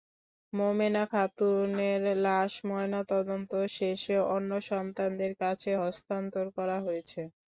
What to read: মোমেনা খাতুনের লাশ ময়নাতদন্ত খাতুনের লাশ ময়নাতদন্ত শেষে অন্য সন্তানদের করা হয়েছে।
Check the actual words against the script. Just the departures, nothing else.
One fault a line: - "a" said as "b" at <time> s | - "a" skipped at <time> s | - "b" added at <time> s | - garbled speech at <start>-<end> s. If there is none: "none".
- "খাতুনের লাশ ময়নাতদন্ত" skipped at 3.5 s
- "কাছে হস্তান্তর" added at 5.4 s